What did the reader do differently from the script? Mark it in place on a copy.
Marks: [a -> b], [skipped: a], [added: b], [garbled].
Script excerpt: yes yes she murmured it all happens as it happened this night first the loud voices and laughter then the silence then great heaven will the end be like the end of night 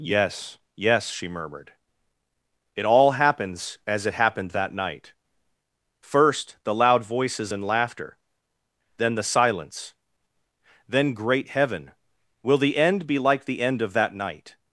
yes yes she murmured it all happens as it happened [this -> that] night first the loud voices and laughter then the silence then great heaven will the end be like the end of [added: that] night